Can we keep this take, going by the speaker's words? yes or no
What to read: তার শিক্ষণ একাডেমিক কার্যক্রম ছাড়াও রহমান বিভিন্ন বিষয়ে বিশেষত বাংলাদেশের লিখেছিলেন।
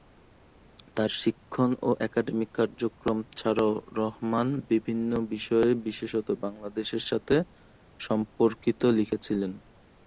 no